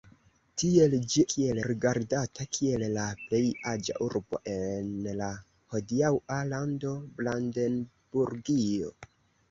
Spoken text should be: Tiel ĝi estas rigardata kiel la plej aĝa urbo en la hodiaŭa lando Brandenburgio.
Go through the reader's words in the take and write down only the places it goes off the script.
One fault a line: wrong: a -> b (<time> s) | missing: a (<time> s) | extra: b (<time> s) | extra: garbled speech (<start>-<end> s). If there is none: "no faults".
wrong: estas -> kiel (1.4 s)